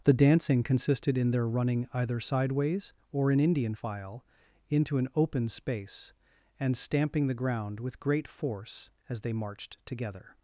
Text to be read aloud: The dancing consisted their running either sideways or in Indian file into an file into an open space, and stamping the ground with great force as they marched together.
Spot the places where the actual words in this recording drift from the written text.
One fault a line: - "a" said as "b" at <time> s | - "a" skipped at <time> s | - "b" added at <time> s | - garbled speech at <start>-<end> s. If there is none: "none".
- "in" added at 1.2 s
- "file into an" skipped at 5.1 s